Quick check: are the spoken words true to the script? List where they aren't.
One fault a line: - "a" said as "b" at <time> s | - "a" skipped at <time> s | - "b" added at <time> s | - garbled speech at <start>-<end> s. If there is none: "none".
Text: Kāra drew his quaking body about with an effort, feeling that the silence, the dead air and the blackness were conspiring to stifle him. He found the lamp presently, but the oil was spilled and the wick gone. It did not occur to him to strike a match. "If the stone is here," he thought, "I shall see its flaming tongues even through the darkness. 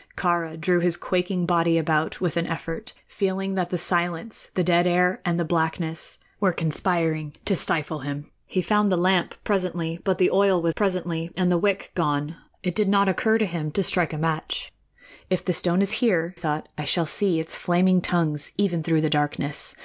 - "spilled" said as "presently" at 10.7 s
- "he" skipped at 16.4 s